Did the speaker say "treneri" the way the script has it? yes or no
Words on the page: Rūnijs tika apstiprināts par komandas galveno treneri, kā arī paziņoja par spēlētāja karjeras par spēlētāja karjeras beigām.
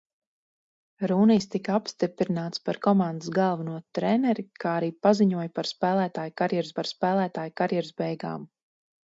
yes